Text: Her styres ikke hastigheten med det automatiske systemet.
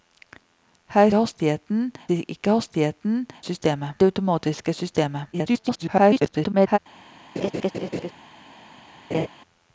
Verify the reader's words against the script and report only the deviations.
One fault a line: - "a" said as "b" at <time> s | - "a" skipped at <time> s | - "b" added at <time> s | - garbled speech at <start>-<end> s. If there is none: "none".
- "styres" said as "hastigheten" at 1.1 s
- "med" said as "systemet" at 3.4 s
- garbled speech at 5.3-6.8 s